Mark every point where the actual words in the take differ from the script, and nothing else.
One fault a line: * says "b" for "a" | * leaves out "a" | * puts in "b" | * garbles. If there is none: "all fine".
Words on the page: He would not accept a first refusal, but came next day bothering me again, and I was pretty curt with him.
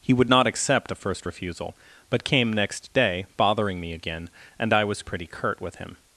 all fine